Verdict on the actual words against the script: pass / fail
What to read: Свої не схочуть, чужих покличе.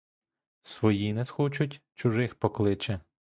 pass